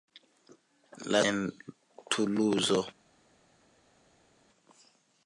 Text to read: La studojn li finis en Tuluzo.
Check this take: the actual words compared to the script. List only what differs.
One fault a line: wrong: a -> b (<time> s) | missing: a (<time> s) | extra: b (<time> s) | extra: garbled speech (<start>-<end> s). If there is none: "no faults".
missing: studojn li finis (1.2 s)